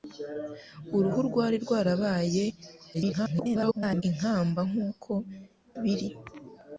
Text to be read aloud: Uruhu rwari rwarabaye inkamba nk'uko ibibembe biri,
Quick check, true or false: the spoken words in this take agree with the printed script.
false